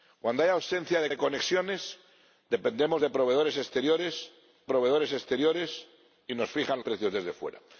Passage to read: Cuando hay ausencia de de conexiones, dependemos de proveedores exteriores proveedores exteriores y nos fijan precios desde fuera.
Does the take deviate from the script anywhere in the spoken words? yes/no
no